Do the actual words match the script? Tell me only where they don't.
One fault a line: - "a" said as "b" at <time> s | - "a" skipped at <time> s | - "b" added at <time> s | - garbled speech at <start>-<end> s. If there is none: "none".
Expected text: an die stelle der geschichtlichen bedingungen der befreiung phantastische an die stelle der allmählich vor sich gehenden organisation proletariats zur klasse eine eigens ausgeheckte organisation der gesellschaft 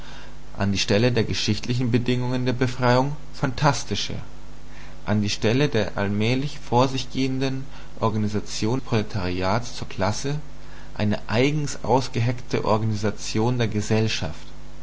none